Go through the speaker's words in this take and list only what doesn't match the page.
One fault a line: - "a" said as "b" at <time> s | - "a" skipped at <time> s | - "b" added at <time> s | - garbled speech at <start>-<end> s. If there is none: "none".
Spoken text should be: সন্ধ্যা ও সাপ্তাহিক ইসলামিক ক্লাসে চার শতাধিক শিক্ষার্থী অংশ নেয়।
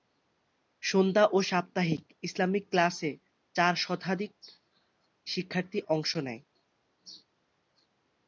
none